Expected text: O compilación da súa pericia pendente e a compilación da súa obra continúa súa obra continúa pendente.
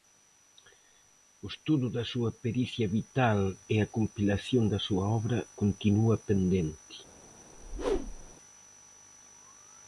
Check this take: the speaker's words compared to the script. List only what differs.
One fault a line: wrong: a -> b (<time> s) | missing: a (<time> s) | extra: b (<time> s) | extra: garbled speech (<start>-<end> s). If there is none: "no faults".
wrong: compilación -> estudo (1.5 s)
wrong: pendente -> vital (3.0 s)
missing: súa obra continúa (6.1 s)